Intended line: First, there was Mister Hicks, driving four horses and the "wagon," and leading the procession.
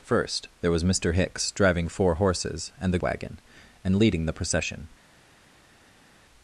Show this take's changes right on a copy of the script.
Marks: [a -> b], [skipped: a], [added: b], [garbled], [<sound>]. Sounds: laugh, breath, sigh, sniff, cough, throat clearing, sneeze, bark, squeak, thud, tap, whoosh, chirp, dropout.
First, there was Mister Hicks, driving four horses and the "wagon," and leading the procession.